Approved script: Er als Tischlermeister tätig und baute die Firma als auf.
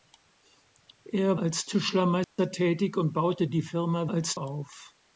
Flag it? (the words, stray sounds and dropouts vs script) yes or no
yes